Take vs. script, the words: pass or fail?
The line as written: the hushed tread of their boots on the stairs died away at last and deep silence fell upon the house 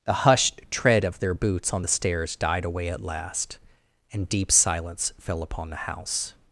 pass